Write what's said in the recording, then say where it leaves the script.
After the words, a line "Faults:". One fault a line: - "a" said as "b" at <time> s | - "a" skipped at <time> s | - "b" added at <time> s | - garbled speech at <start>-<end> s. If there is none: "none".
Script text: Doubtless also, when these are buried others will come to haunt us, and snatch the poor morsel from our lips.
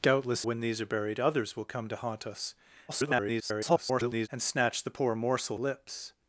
Doubtless when these are buried others will come to haunt us, [garbled] and snatch the poor morsel lips.
Faults:
- "also" skipped at 0.5 s
- garbled speech at 2.9-4.3 s
- "from our" skipped at 5.6 s